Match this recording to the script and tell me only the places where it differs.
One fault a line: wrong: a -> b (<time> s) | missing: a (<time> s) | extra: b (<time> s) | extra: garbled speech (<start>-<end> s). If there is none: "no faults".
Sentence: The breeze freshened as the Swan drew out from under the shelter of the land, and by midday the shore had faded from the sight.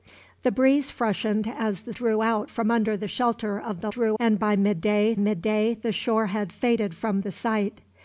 missing: Swan (1.9 s)
wrong: land -> drew (3.9 s)
extra: midday (5.2 s)